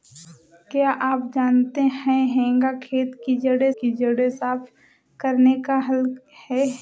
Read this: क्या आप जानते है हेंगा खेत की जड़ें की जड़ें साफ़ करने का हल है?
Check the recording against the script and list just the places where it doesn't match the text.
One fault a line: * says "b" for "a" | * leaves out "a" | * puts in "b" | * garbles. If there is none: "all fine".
all fine